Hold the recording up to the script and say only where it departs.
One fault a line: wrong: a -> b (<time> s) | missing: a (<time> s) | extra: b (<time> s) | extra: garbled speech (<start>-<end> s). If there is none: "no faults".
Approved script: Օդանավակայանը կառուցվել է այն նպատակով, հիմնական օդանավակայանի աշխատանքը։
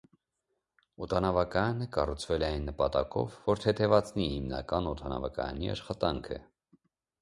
extra: որ թեթևացնի (3.5 s)